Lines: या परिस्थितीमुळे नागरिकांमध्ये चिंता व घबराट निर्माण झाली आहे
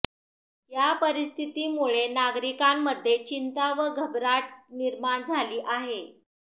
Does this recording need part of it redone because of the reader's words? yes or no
no